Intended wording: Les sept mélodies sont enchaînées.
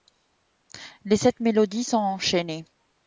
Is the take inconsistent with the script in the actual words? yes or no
no